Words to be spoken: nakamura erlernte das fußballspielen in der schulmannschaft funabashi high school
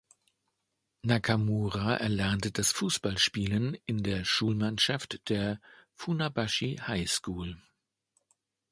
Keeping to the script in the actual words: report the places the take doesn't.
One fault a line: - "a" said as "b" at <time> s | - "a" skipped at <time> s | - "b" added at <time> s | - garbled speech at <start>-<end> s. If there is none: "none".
- "der" added at 5.3 s